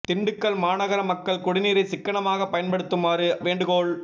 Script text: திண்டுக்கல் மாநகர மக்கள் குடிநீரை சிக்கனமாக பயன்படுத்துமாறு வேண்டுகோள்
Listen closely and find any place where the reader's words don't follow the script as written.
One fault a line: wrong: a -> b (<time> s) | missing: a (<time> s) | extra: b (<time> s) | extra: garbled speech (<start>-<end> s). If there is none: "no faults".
no faults